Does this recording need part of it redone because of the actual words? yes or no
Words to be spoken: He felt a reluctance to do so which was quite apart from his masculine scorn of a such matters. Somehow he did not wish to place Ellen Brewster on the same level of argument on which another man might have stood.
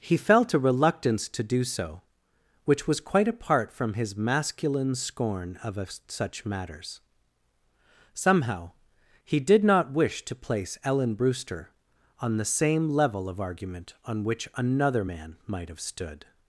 no